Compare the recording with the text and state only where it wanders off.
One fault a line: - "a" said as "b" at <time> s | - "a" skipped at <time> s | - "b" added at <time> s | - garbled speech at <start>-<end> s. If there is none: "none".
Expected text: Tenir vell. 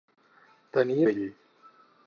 none